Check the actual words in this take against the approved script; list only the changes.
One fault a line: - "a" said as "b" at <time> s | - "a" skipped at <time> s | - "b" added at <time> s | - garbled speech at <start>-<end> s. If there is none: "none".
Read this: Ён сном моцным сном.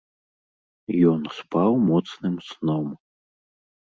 - "сном" said as "спаў" at 1.4 s